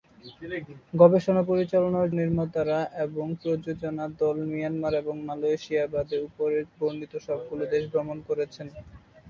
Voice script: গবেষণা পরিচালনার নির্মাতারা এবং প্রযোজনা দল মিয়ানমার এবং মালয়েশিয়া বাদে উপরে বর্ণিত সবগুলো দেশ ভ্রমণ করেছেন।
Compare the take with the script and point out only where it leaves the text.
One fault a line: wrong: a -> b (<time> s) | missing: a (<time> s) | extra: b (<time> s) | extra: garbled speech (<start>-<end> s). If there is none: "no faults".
no faults